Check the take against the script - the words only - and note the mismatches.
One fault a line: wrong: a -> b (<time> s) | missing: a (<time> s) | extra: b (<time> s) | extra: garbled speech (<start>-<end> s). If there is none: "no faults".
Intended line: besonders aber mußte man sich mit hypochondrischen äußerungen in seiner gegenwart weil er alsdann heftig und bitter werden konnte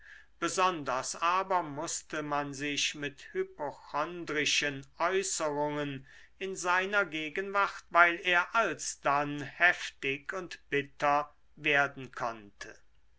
no faults